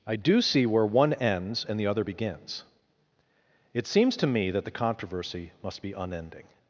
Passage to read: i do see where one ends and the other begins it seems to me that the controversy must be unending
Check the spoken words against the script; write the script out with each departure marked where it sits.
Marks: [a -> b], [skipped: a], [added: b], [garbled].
i do see where one ends and the other begins it seems to me that the controversy must be unending